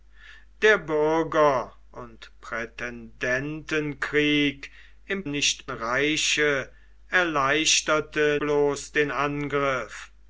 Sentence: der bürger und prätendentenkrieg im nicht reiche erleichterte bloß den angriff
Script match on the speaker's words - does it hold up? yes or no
yes